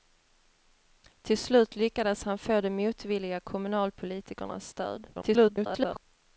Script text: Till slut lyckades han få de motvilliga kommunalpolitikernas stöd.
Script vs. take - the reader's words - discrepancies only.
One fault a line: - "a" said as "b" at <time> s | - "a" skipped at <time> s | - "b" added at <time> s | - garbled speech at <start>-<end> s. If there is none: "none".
- garbled speech at 5.1-6.0 s